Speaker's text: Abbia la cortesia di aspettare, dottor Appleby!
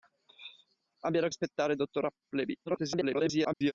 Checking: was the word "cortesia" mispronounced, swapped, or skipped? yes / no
yes